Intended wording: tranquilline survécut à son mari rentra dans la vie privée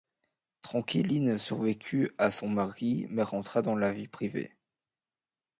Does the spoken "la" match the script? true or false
true